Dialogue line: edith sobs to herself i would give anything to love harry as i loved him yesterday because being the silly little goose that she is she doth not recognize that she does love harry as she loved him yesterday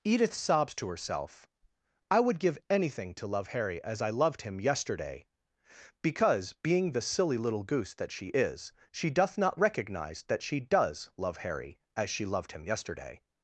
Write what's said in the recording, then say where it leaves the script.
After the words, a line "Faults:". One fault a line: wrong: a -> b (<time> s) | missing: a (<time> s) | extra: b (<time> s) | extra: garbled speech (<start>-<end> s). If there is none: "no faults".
edith sobs to herself i would give anything to love harry as i loved him yesterday because being the silly little goose that she is she doth not recognize that she does love harry as she loved him yesterday
Faults:
no faults